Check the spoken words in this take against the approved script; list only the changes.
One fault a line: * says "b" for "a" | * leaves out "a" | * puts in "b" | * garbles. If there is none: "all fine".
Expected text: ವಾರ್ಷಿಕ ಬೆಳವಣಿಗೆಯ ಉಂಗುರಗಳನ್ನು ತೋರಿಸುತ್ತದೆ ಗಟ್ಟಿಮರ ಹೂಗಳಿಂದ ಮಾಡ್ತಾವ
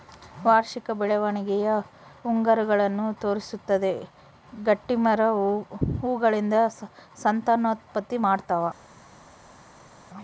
* puts in "ಸಂತಾನೋತ್ಪತ್ತಿ"